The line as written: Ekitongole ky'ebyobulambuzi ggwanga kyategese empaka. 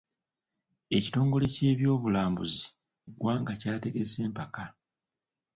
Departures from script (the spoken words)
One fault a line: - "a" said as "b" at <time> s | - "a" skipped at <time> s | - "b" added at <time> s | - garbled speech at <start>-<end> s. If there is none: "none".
none